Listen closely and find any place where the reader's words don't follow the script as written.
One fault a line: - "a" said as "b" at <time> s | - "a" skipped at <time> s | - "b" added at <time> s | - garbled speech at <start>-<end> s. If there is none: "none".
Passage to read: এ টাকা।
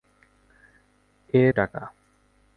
none